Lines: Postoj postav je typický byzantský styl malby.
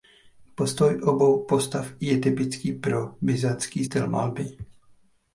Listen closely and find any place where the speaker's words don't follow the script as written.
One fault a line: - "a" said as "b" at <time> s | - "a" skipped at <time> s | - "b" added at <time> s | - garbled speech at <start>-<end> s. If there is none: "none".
- "obou" added at 1.0 s
- "pro" added at 2.7 s